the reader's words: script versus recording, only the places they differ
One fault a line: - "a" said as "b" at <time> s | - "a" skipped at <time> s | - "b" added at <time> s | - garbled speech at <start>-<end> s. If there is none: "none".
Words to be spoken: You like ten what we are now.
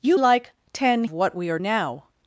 none